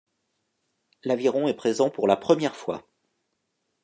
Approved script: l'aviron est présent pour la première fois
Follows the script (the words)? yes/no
yes